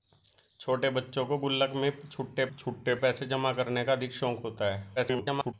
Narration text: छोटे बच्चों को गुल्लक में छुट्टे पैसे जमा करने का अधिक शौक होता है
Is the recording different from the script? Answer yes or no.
yes